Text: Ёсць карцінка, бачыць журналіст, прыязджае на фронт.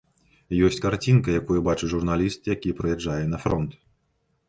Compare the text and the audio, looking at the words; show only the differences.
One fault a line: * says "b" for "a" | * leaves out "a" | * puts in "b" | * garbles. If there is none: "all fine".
* puts in "якую"
* puts in "які"